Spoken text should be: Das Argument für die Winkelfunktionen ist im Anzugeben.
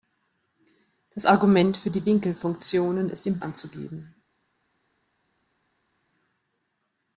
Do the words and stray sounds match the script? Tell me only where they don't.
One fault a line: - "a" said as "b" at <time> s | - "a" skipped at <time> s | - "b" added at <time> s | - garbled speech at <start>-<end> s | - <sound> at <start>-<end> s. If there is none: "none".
none